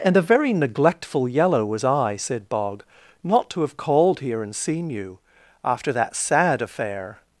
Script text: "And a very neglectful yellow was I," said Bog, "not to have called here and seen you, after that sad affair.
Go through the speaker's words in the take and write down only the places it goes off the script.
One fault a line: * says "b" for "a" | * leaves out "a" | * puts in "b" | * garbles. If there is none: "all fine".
all fine